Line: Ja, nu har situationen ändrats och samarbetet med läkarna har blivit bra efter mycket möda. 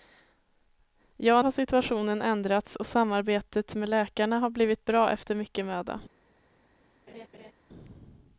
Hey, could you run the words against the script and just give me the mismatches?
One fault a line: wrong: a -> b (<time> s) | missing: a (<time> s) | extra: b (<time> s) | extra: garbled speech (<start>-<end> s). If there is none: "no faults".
missing: nu (1.4 s)